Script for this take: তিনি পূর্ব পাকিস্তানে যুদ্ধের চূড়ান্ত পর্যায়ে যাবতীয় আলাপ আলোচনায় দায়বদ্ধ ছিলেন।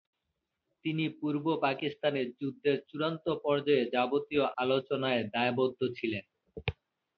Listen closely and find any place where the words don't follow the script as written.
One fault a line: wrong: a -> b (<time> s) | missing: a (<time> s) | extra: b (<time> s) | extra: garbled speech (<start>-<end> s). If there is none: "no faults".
missing: আলাপ (4.5 s)